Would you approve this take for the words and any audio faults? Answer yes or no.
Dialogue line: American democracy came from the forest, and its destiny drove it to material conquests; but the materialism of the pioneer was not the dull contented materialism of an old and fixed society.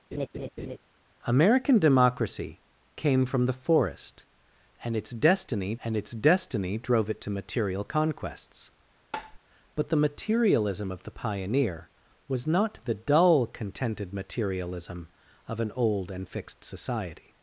no